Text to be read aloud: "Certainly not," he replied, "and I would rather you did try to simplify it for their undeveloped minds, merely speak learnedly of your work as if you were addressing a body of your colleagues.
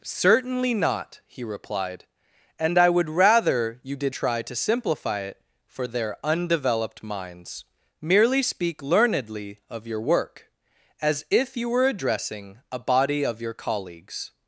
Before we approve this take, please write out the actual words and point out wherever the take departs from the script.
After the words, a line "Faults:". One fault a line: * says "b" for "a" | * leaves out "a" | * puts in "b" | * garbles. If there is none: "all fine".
"Certainly not," he replied, "and I would rather you did try to simplify it for their undeveloped minds, merely speak learnedly of your work as if you were addressing a body of your colleagues.
Faults:
all fine